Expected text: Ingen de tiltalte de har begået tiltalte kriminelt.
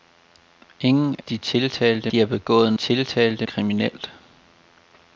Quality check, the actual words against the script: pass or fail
pass